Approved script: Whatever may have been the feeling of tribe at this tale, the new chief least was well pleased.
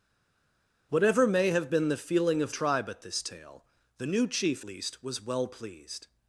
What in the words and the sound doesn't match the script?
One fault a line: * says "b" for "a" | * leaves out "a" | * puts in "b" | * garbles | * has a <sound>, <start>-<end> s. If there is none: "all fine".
all fine